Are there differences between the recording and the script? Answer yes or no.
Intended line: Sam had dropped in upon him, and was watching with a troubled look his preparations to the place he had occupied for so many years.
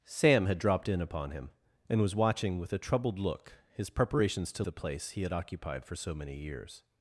no